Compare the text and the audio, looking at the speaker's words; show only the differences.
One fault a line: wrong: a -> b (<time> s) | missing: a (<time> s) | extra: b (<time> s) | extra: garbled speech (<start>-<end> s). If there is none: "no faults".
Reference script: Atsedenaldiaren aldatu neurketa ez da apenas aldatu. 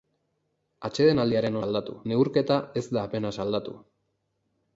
no faults